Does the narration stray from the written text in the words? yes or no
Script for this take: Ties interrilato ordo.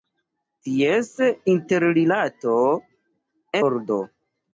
no